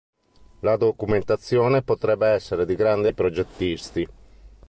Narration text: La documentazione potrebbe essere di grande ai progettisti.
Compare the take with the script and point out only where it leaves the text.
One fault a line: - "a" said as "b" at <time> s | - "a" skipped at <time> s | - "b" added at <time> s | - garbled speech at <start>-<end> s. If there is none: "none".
none